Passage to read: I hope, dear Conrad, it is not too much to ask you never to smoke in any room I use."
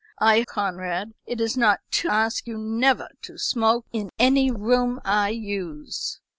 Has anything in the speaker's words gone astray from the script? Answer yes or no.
yes